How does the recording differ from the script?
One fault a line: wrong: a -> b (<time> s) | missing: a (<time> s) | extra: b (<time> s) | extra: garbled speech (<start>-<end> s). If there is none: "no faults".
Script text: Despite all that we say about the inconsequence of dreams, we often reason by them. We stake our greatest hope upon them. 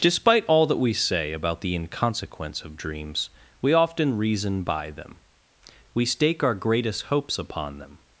wrong: hope -> hopes (7.0 s)